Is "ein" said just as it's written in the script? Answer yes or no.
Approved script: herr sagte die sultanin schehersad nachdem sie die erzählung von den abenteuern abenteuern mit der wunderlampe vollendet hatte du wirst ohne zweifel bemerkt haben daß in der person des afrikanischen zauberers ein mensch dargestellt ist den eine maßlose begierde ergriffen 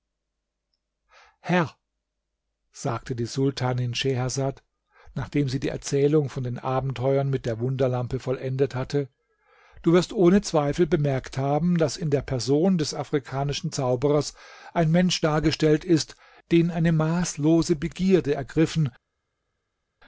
yes